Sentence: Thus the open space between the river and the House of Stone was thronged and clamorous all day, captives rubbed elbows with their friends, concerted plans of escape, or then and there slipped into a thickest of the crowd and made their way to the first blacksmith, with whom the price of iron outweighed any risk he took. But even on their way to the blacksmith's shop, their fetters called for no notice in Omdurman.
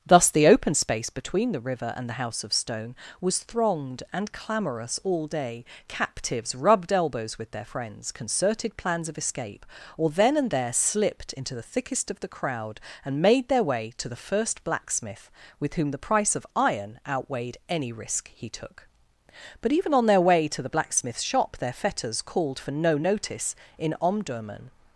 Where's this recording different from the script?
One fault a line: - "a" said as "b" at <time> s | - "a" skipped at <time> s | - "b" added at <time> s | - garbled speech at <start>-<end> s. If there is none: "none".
- "a" said as "the" at 11.5 s